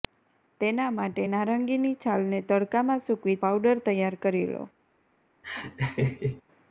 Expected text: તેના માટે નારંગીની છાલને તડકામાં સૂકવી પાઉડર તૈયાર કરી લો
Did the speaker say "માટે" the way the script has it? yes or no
yes